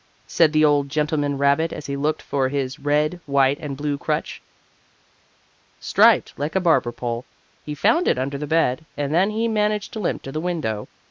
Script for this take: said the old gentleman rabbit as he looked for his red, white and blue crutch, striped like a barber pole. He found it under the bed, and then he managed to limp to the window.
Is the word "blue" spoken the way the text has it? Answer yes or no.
yes